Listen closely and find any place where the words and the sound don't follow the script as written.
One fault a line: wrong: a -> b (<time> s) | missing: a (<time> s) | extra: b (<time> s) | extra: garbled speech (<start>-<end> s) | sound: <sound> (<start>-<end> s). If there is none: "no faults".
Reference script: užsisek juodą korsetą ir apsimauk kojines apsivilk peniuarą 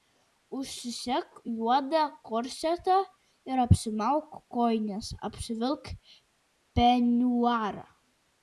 no faults